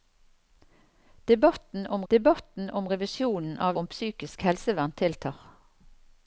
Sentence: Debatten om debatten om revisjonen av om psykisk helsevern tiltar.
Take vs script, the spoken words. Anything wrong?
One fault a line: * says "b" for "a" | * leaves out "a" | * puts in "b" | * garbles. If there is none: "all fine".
all fine